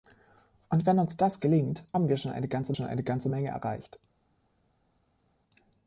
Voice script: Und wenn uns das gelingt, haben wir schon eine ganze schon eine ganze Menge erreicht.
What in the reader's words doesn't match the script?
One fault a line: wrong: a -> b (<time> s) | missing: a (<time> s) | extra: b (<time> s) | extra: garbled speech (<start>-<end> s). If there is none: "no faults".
no faults